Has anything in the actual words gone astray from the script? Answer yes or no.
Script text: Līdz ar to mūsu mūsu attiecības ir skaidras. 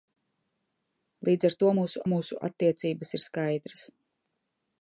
no